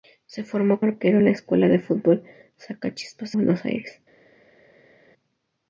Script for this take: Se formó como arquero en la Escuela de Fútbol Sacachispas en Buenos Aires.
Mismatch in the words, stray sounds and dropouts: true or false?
true